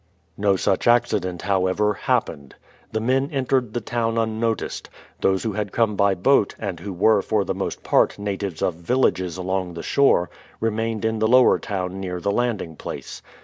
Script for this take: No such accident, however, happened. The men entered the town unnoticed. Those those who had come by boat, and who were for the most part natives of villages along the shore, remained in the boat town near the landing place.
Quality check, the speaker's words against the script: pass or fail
fail